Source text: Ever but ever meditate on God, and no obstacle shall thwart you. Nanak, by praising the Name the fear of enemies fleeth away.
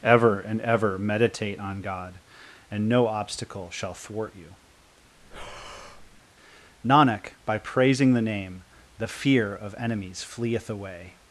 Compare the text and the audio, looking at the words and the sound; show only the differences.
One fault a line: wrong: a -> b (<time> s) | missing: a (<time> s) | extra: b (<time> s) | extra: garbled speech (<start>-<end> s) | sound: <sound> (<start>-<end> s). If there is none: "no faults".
wrong: but -> and (0.4 s)
sound: breath (5.2-6.2 s)